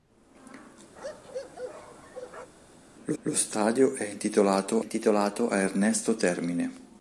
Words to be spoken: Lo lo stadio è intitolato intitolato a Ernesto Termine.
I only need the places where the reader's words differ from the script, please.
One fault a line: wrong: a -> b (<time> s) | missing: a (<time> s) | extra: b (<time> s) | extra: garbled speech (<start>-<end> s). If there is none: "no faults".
no faults